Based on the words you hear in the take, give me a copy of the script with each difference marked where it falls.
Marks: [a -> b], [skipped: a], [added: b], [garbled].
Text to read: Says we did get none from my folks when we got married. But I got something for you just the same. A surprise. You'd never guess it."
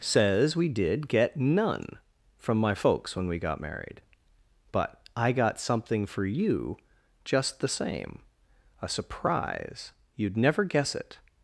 Says we did get none from my folks when we got married. But I got something for you just the same. A surprise. You'd never guess it."